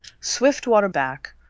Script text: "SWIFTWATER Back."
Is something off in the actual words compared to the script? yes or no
no